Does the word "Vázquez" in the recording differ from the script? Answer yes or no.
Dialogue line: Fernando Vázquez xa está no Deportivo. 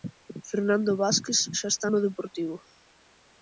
no